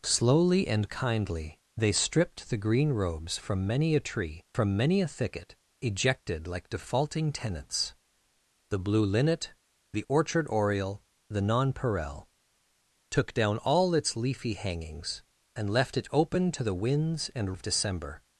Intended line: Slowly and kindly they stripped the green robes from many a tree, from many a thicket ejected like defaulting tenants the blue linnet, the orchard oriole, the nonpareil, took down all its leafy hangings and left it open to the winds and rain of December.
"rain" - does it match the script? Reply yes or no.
no